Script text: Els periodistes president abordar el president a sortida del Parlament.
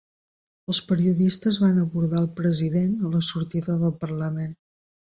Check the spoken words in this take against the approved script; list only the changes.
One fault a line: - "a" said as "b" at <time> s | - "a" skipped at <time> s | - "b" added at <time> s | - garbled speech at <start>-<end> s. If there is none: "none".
- "president" said as "van" at 1.6 s
- "la" added at 3.1 s